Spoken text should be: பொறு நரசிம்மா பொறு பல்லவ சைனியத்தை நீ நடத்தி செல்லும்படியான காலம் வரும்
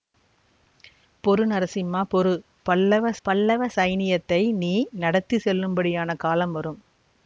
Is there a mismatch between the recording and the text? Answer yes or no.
yes